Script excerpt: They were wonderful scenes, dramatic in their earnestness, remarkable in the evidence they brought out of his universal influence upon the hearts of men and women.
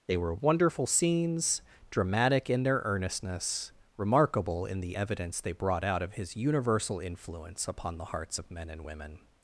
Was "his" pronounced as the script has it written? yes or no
yes